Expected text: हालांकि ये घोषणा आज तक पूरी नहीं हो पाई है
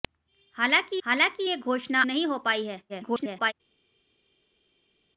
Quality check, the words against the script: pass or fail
fail